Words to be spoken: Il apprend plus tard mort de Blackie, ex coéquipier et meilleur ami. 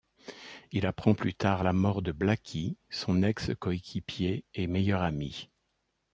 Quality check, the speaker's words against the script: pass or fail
fail